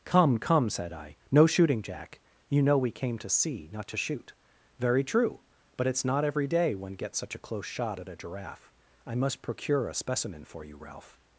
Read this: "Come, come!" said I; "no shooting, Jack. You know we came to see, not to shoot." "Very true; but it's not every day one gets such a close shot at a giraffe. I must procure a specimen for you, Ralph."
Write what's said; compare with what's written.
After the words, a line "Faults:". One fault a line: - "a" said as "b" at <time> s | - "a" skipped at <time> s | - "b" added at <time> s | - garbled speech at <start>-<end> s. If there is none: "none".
"Come, come!" said I; "no shooting, Jack. You know we came to see, not to shoot." "Very true; but it's not every day one gets such a close shot at a giraffe. I must procure a specimen for you, Ralph."
Faults:
none